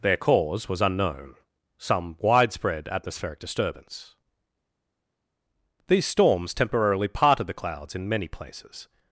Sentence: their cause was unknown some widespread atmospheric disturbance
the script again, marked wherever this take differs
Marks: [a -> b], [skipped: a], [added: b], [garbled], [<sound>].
their cause was unknown some widespread atmospheric disturbance [added: these storms temporarily parted the clouds in many places]